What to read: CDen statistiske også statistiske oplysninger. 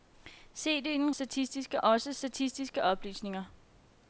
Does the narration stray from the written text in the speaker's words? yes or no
no